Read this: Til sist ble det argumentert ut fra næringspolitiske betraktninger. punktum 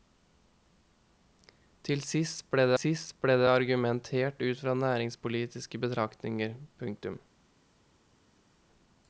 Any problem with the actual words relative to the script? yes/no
yes